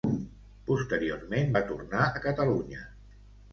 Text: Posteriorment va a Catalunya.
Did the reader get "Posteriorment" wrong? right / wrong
right